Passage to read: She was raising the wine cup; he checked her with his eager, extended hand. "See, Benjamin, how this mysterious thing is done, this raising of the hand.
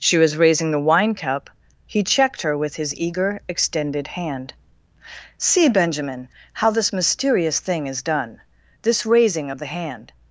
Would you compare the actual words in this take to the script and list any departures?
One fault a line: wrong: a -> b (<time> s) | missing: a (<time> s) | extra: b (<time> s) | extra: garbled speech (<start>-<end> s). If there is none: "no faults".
no faults